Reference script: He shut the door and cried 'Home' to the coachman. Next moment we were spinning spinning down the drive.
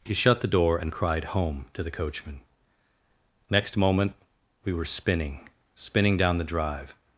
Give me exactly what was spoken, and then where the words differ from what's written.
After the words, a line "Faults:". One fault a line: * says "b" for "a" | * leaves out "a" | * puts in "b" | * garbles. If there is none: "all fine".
He shut the door and cried 'Home' to the coachman. Next moment we were spinning spinning down the drive.
Faults:
all fine